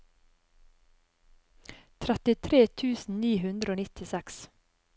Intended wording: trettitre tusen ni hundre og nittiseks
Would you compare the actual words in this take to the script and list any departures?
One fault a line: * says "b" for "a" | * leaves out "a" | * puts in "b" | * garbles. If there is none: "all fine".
all fine